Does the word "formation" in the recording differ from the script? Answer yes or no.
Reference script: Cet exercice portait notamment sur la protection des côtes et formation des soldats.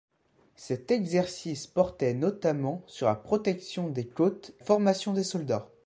no